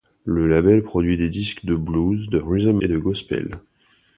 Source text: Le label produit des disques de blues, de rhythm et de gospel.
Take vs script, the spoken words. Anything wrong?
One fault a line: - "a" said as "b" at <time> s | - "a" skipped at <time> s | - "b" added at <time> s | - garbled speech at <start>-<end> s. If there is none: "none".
none